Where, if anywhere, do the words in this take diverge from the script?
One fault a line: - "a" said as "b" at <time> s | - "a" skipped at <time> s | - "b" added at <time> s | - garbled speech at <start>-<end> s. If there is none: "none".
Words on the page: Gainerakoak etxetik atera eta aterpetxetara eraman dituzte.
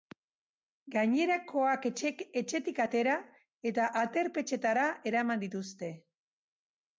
none